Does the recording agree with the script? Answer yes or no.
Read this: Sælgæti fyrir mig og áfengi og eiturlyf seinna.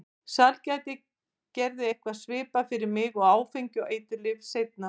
no